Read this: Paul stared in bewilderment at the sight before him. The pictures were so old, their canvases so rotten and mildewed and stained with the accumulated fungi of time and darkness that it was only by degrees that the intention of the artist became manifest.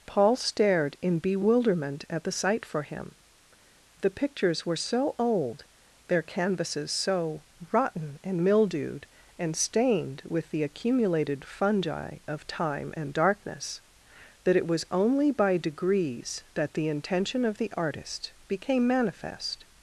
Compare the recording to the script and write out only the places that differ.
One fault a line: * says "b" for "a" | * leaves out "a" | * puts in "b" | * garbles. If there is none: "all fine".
* says "for" for "before"